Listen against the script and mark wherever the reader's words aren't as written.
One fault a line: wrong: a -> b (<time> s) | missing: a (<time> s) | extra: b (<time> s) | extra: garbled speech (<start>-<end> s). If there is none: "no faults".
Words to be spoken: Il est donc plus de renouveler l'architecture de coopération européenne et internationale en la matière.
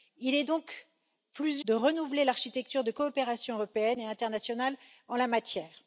no faults